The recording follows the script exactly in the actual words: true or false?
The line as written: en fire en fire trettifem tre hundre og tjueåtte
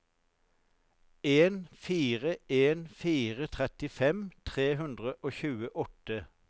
true